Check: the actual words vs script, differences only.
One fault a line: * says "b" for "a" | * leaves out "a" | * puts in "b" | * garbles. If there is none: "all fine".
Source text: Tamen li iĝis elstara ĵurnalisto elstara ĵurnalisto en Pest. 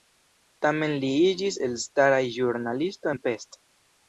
* leaves out "elstara ĵurnalisto"